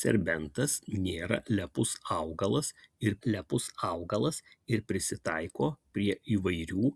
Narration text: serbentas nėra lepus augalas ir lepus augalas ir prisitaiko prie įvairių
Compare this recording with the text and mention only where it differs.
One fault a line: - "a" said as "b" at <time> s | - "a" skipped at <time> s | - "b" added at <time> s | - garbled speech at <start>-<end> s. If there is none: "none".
none